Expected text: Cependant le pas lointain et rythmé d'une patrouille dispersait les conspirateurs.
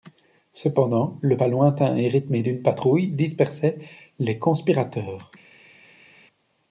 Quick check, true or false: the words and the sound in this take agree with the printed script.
true